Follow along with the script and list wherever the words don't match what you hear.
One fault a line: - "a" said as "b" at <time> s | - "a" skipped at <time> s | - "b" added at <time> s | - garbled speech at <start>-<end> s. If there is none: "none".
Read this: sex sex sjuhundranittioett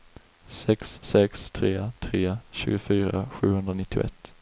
- "tre tre tjugofyra" added at 1.5 s